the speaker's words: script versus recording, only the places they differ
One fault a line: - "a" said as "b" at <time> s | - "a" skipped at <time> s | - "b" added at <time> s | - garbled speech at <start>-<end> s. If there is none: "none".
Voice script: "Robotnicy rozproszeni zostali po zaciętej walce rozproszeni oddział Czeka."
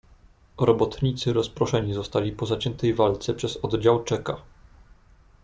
- "rozproszeni" said as "przez" at 3.3 s